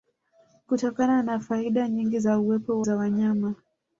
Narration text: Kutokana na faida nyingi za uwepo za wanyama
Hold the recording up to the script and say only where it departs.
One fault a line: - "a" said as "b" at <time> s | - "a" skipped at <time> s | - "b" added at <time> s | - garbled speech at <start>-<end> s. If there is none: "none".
none